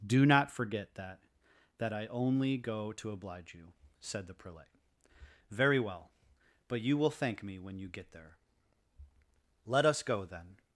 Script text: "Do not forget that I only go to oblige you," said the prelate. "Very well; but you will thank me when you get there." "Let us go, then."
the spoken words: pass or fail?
fail